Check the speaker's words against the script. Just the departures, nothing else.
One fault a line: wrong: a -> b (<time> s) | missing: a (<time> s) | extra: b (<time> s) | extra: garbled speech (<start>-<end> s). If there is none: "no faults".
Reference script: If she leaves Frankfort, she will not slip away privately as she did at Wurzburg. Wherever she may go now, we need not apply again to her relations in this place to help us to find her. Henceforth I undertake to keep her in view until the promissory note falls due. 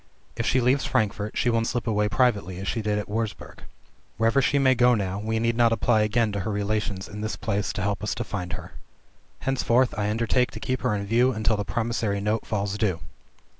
missing: not (1.6 s)